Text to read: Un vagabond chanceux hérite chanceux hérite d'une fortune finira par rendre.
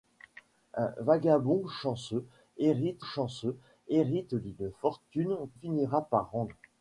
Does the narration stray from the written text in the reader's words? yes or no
no